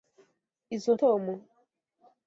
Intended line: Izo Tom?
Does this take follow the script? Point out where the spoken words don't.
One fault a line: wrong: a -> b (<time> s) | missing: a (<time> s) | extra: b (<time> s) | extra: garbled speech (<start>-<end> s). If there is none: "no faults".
no faults